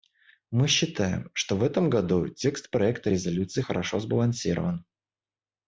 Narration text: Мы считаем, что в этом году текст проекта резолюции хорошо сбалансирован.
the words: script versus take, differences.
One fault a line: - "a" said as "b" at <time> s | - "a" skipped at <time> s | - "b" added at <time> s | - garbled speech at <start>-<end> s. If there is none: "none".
none